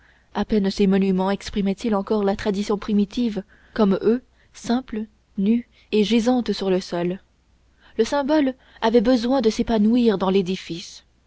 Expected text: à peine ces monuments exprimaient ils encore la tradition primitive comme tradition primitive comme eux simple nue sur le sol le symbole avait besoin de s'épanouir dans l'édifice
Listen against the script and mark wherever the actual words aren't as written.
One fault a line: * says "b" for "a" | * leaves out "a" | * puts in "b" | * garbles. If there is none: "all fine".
* leaves out "tradition primitive comme"
* puts in "et gisante"